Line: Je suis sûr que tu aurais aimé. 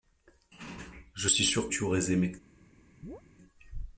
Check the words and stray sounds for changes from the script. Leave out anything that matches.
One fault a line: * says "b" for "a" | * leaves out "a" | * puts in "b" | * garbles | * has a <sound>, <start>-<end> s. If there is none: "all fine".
* leaves out "que"
* has a chirp, 3.0-3.2 s